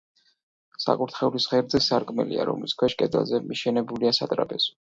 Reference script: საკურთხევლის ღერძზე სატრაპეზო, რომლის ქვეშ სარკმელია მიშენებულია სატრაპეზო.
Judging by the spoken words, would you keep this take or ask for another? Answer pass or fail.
fail